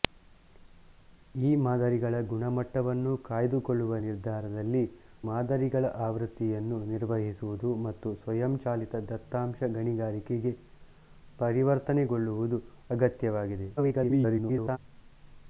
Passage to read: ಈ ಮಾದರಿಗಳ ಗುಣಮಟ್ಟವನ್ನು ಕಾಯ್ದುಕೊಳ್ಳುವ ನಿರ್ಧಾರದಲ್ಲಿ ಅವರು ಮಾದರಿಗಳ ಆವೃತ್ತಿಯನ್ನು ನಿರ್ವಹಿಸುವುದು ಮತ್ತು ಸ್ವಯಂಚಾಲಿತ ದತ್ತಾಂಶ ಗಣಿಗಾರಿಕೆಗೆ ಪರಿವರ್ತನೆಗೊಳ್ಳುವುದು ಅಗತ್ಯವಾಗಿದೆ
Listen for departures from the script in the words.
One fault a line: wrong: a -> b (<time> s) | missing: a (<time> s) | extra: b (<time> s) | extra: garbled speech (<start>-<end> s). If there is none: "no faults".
missing: ಅವರು (4.8 s)
extra: garbled speech (13.8-14.8 s)